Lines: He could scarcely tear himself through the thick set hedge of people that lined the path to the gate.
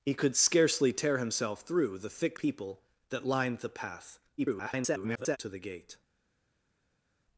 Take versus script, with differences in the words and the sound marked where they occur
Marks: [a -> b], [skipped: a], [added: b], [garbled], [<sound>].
He could scarcely tear himself through the thick [skipped: set hedge of] people that lined the path [garbled] to the gate.